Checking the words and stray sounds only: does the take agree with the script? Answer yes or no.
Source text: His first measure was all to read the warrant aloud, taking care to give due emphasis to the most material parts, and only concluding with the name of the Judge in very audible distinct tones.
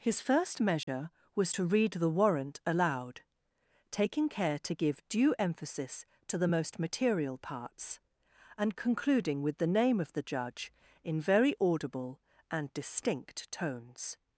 no